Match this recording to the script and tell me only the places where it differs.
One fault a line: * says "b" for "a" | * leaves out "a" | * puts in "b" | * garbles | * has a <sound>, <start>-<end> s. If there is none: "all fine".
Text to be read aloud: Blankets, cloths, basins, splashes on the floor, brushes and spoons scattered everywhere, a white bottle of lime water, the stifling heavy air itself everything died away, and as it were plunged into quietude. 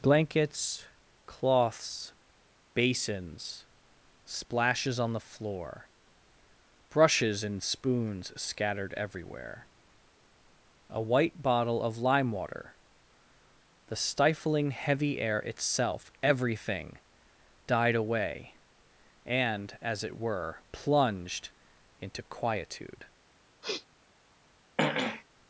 * has a sniff, 23.6-23.9 s
* has a throat clearing, 24.8-25.2 s